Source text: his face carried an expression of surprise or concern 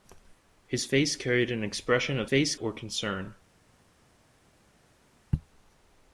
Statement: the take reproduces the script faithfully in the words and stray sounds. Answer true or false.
false